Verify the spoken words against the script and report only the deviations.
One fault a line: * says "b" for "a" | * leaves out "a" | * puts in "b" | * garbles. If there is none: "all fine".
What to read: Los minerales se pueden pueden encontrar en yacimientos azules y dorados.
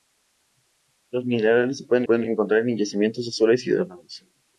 all fine